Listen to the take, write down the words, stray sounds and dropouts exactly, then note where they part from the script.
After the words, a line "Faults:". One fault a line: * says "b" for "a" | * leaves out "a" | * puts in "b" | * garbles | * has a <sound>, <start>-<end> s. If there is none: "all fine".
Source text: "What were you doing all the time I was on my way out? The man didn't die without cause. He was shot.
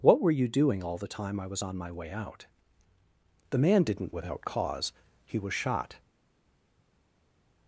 "What were you doing all the time I was on my way out? The man didn't without cause. He was shot.
Faults:
* leaves out "die"